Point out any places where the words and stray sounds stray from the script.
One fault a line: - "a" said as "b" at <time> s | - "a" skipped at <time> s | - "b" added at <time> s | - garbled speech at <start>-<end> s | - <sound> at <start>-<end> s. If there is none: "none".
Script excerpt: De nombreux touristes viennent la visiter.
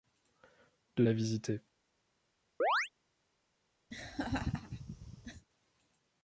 - "nombreux touristes viennent" skipped at 1.1 s
- chirp at 2.6-2.9 s
- laugh at 3.9-5.5 s